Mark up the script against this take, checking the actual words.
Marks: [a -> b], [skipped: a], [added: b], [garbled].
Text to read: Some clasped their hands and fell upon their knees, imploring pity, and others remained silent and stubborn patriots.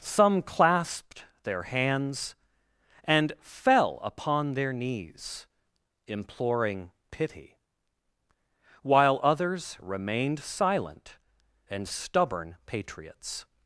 Some clasped their hands and fell upon their knees, imploring pity, [and -> while] others remained silent and stubborn patriots.